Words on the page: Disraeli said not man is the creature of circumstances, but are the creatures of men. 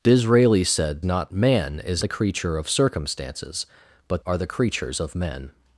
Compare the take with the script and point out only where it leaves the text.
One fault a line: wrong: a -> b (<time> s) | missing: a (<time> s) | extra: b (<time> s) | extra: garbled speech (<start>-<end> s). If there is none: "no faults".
no faults